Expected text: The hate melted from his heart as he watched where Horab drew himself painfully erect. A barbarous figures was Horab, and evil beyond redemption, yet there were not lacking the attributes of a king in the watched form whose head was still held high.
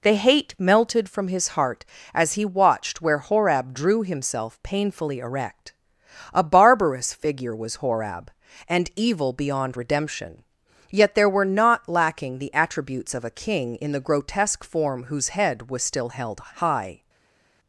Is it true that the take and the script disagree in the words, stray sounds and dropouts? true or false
true